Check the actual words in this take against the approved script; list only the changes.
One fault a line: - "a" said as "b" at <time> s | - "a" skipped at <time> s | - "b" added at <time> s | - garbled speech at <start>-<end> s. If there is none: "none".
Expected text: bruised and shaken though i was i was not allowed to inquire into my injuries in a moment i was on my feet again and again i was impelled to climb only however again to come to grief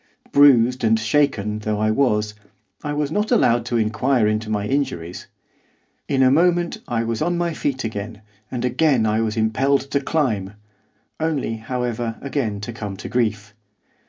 none